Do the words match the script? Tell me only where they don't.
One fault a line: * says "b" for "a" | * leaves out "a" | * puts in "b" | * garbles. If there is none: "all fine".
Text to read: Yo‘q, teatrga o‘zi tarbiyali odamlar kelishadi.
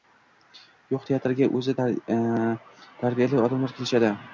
all fine